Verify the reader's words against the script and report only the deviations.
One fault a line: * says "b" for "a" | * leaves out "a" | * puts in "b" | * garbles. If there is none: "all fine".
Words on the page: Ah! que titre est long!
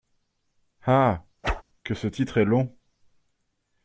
* puts in "ce"